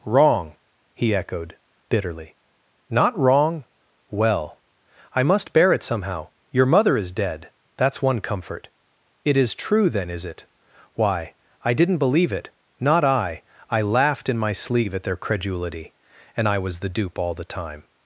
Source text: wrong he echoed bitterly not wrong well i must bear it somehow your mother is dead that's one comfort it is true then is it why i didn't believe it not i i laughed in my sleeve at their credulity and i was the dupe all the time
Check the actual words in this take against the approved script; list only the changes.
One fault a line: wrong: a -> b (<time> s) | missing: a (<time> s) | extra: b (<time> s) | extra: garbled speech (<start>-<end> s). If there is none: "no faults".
no faults